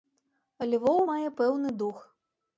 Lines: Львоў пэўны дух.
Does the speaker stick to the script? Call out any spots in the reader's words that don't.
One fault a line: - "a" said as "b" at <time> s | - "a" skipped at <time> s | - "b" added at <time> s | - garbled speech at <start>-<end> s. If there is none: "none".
- "мае" added at 1.1 s